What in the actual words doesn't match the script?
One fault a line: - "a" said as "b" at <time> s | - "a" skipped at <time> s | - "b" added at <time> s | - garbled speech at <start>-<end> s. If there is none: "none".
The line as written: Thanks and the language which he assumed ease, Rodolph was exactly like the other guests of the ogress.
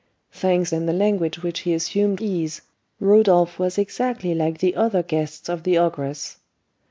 none